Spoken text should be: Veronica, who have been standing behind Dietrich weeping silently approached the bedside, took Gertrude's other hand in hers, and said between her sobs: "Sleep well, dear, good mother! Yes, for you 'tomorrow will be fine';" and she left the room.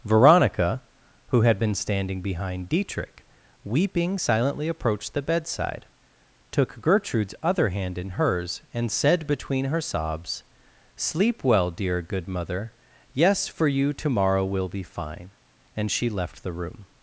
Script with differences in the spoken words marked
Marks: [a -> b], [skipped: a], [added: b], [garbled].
Veronica, who [have -> had] been standing behind Dietrich weeping silently approached the bedside, took Gertrude's other hand in hers, and said between her sobs: "Sleep well, dear, good mother! Yes, for you 'tomorrow will be fine';" and she left the room.